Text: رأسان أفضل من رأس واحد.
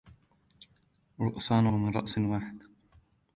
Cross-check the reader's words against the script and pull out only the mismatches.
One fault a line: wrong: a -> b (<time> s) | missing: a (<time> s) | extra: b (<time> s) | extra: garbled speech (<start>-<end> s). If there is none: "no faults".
missing: أفضل (1.7 s)